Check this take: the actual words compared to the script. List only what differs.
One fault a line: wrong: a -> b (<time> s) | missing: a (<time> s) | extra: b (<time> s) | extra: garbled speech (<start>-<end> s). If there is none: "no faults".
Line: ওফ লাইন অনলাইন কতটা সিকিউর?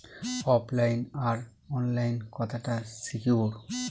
extra: আর (1.3 s)